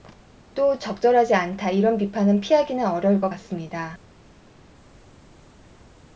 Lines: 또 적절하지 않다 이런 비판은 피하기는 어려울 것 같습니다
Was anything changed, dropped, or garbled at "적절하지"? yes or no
no